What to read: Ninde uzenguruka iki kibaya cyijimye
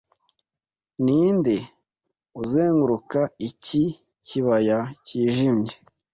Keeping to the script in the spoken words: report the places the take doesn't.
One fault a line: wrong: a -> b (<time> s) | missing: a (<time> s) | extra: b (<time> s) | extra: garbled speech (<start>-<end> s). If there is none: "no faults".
no faults